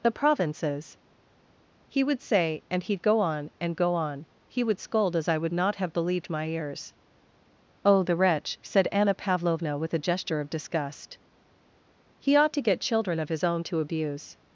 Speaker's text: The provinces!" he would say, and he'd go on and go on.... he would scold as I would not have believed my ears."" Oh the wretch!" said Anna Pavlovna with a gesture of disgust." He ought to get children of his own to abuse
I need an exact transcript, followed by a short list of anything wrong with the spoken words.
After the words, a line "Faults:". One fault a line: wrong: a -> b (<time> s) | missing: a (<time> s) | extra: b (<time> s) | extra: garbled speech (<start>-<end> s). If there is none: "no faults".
The provinces!" he would say, and he'd go on and go on.... he would scold as I would not have believed my ears."" Oh the wretch!" said Anna Pavlovna with a gesture of disgust." He ought to get children of his own to abuse
Faults:
no faults